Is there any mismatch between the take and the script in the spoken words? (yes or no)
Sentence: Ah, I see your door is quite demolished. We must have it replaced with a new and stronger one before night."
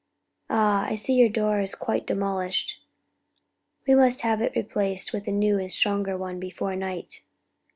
no